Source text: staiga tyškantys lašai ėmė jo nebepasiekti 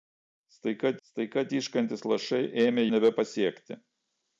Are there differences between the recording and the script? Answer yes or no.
yes